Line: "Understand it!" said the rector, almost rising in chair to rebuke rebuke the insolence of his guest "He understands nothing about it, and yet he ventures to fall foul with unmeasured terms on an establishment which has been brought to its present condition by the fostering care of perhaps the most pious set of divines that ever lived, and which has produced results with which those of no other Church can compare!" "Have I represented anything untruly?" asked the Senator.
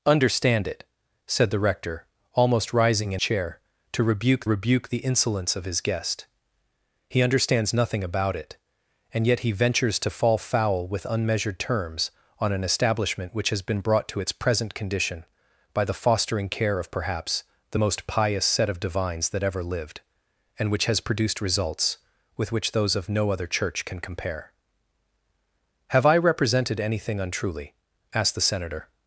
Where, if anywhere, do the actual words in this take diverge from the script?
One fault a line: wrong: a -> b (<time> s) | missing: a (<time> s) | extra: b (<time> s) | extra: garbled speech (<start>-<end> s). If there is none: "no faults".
no faults